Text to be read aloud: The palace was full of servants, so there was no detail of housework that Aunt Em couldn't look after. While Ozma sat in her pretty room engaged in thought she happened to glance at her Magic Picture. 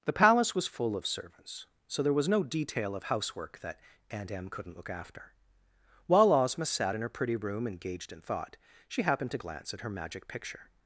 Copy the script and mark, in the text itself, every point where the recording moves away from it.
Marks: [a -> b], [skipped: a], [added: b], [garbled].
The palace was full of servants, so there was no detail of housework that Aunt Em couldn't look after. While Ozma sat in her pretty room engaged in thought she happened to glance at her Magic Picture.